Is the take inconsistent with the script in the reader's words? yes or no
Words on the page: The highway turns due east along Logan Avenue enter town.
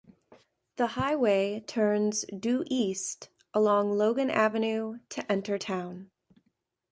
yes